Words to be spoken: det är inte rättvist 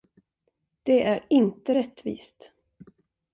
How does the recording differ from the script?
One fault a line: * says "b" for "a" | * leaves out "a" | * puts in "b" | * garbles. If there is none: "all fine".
all fine